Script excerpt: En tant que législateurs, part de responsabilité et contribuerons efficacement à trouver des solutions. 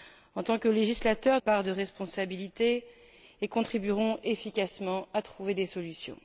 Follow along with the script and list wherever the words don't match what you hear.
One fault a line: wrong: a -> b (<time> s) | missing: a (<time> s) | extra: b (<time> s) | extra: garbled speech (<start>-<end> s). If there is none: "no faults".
no faults